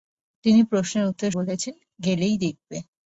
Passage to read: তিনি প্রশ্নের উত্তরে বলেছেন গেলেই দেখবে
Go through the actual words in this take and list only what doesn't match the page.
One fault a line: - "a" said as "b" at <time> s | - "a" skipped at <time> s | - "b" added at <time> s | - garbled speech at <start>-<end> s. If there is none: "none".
none